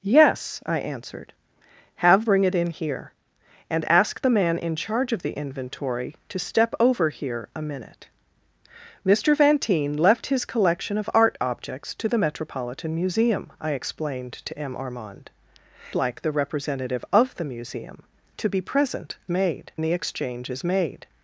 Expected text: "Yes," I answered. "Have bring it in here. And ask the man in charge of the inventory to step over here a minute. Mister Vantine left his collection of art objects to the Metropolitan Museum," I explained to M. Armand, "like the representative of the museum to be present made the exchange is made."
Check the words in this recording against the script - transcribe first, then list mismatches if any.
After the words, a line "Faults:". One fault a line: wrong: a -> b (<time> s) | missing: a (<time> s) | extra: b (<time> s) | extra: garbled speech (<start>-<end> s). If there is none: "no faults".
"Yes," I answered. "Have bring it in here. And ask the man in charge of the inventory to step over here a minute. Mister Vantine left his collection of art objects to the Metropolitan Museum," I explained to M. Armand, "like the representative of the museum to be present made the exchange is made."
Faults:
no faults